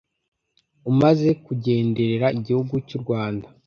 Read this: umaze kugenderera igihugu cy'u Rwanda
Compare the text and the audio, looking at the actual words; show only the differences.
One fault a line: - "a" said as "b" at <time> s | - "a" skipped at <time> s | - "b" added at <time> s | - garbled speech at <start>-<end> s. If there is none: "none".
none